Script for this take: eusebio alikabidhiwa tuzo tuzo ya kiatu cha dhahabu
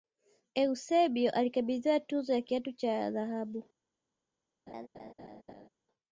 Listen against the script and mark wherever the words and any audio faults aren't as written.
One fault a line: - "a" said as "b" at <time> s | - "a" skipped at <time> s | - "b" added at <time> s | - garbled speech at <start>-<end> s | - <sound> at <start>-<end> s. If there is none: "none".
- "tuzo" skipped at 2.3 s
- laugh at 4.7-5.7 s